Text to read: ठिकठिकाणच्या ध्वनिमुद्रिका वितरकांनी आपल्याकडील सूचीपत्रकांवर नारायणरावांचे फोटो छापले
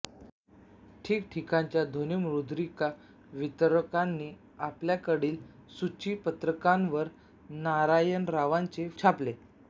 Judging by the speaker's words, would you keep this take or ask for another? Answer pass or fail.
fail